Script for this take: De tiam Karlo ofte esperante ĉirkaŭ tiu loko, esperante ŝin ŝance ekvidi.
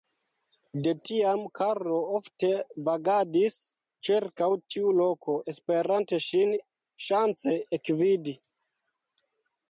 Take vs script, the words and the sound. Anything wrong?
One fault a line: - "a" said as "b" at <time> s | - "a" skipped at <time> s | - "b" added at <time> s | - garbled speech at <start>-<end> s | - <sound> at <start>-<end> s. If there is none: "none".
- "esperante" said as "vagadis" at 2.9 s